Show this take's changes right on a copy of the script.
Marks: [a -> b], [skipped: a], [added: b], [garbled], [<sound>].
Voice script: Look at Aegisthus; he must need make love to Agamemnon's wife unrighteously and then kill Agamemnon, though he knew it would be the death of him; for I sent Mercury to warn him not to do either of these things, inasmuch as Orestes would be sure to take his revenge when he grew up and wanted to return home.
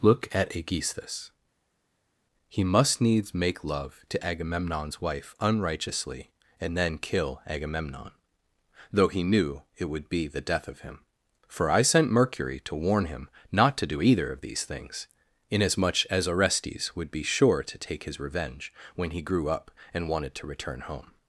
Look at Aegisthus; he must [need -> needs] make love to Agamemnon's wife unrighteously and then kill Agamemnon, though he knew it would be the death of him; for I sent Mercury to warn him not to do either of these things, inasmuch as Orestes would be sure to take his revenge when he grew up and wanted to return home.